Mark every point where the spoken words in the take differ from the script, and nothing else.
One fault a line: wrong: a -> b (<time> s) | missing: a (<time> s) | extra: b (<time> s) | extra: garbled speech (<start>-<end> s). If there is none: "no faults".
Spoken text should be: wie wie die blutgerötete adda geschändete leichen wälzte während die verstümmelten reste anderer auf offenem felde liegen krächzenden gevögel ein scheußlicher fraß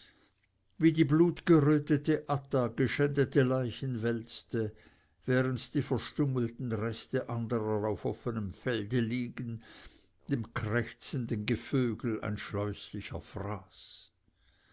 missing: wie (0.9 s)
extra: dem (10.3 s)